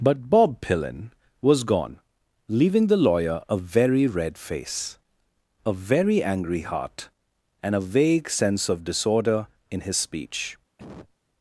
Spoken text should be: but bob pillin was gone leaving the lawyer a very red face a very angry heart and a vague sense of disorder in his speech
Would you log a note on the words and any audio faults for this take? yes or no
yes